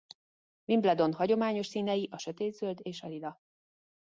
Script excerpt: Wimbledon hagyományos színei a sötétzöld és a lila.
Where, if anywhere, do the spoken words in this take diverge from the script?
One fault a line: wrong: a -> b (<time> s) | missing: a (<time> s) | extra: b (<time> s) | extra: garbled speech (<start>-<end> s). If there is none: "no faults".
no faults